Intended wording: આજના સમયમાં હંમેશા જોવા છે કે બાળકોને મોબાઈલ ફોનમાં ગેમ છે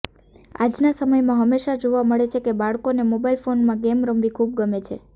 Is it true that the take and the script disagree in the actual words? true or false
true